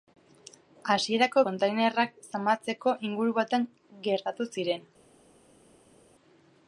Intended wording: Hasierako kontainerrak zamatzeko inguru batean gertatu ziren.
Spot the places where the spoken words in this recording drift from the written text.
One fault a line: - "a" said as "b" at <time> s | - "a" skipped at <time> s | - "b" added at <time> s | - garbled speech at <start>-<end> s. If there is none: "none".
none